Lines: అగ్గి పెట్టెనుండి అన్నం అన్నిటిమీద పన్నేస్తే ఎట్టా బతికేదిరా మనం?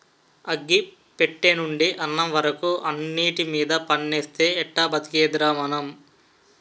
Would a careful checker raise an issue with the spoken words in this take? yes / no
yes